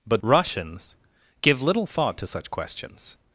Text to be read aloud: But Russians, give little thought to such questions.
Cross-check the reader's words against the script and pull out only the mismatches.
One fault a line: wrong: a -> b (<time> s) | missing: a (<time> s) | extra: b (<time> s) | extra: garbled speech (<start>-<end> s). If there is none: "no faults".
no faults